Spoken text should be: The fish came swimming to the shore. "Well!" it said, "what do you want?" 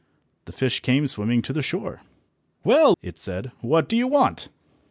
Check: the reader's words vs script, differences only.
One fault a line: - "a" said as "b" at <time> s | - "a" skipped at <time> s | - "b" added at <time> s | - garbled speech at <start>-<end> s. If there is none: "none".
none